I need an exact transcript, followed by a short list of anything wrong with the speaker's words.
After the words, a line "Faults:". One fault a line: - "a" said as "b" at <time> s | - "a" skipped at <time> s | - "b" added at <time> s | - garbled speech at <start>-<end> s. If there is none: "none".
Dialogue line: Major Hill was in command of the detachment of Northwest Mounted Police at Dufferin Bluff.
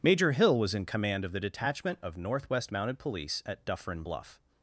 Major Hill was in command of the detachment of Northwest Mounted Police at Dufferin Bluff.
Faults:
none